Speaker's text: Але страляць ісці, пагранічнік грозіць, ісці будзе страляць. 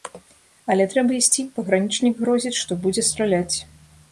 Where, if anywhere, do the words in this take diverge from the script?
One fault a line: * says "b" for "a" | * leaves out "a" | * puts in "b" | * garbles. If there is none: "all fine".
* says "трэба" for "страляць"
* says "што" for "ісці"